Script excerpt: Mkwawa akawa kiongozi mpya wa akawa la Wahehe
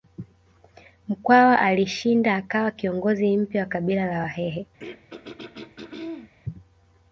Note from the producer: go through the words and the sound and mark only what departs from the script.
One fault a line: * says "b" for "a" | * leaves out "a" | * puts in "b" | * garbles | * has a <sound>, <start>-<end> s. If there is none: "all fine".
* puts in "alishinda"
* says "kabila" for "akawa"
* has a throat clearing, 4.8-6.3 s